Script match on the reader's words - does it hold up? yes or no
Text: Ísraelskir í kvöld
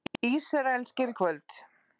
yes